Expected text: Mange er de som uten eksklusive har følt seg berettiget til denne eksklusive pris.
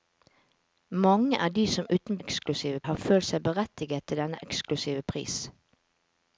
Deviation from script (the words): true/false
false